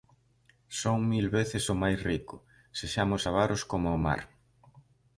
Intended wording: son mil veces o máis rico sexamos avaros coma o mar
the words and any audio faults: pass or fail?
pass